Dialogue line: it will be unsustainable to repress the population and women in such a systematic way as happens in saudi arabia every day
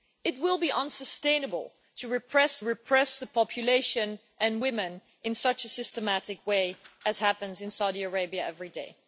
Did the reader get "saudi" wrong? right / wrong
right